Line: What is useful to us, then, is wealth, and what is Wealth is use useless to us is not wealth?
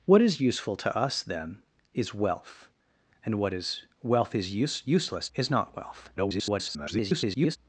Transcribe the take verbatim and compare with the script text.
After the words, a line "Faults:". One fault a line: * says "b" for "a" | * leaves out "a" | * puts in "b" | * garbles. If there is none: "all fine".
What is useful to us, then, is wealth, and what is Wealth is use useless is not wealth? [garbled]
Faults:
* leaves out "to us"
* garbles